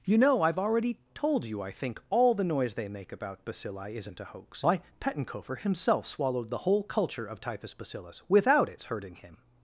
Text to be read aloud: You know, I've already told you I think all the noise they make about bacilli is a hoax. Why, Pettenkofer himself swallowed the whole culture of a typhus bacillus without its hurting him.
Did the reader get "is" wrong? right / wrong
wrong